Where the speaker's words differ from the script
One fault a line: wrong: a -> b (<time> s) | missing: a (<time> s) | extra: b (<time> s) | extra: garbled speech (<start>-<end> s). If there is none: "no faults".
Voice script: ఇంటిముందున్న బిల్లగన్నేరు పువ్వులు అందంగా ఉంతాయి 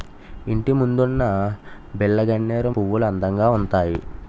no faults